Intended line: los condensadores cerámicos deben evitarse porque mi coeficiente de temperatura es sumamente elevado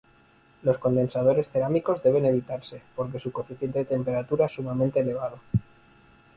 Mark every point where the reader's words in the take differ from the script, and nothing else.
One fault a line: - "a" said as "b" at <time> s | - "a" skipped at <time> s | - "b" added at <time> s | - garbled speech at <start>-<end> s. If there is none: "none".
- "mi" said as "su" at 3.2 s